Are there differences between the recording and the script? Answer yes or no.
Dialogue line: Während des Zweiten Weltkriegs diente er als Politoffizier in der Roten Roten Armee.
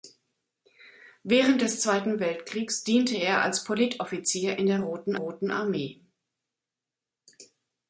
no